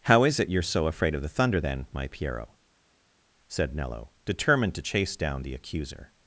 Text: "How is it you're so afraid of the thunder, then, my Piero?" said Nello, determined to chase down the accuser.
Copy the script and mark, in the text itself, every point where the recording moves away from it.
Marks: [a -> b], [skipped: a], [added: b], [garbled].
"How is it you're so afraid of the thunder, then, my Piero?" said Nello, determined to chase down the accuser.